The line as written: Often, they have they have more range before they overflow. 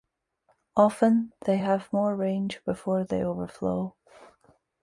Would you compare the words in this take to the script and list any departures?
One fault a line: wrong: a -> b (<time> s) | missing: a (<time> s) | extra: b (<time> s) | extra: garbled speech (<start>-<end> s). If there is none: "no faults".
missing: they have (1.9 s)